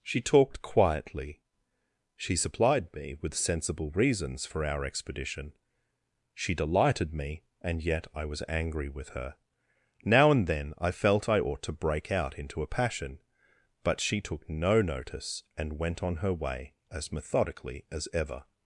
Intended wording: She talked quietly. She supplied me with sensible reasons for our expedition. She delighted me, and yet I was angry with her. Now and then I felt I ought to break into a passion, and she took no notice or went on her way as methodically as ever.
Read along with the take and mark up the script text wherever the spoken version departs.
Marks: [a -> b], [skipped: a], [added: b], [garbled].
She talked quietly. She supplied me with sensible reasons for our expedition. She delighted me, and yet I was angry with her. Now and then I felt I ought to break [added: out] into a passion, [and -> but] she took no notice [or -> and] went on her way as methodically as ever.